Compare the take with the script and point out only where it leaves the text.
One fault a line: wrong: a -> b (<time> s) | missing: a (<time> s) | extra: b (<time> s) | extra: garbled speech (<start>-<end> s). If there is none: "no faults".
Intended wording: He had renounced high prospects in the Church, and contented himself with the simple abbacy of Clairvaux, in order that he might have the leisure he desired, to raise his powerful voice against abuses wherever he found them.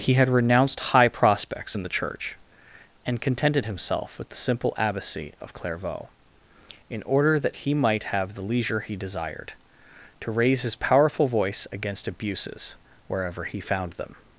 no faults